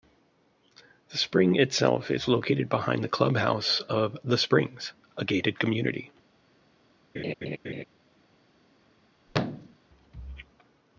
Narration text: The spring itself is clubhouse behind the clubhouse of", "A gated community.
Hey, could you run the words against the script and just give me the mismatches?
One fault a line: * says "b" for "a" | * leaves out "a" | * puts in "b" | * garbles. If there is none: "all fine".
* says "located" for "clubhouse"
* puts in "The Springs"